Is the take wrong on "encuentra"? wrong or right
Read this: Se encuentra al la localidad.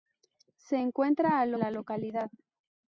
right